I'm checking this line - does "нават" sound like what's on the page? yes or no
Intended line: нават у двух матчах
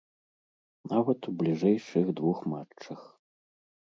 yes